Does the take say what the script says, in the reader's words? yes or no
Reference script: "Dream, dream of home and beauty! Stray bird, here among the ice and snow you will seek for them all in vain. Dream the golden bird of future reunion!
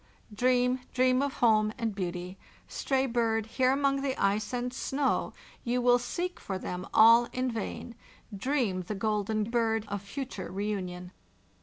yes